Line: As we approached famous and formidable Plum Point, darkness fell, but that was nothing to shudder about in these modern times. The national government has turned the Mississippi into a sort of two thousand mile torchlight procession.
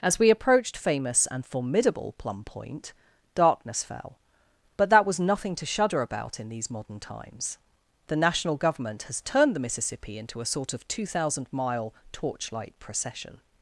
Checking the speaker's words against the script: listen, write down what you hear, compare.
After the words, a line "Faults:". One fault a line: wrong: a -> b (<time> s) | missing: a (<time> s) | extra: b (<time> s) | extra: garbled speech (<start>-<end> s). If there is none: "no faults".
As we approached famous and formidable Plum Point, darkness fell, but that was nothing to shudder about in these modern times. The national government has turned the Mississippi into a sort of two thousand mile torchlight procession.
Faults:
no faults